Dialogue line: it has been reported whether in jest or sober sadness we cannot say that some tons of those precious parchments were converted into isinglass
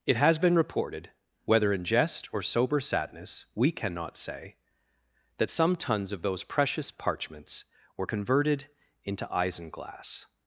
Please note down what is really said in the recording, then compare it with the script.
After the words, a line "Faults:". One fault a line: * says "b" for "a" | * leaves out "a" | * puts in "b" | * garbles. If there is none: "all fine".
it has been reported whether in jest or sober sadness we cannot say that some tons of those precious parchments were converted into isinglass
Faults:
all fine